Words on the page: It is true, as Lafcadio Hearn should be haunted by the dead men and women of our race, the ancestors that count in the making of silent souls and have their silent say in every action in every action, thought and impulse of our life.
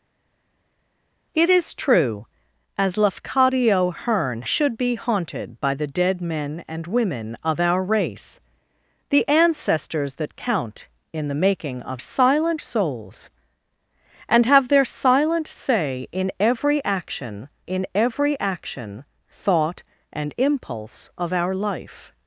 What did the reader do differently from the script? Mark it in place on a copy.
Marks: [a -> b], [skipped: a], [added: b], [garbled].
It is true, as Lafcadio Hearn should be haunted by the dead men and women of our race, the ancestors that count in the making of silent souls and have their silent say in every action in every action, thought and impulse of our life.